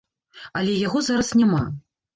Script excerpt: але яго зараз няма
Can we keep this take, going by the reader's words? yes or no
yes